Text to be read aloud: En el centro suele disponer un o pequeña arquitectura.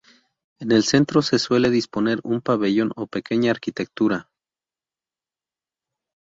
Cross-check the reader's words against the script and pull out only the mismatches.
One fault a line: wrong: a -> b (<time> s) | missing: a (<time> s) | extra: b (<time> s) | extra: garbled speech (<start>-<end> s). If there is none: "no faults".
extra: se (1.2 s)
extra: pabellón (2.4 s)